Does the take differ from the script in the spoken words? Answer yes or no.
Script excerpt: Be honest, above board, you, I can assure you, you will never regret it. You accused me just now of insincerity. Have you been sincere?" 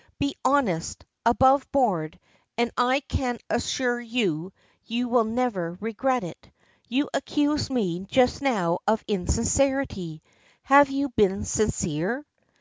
yes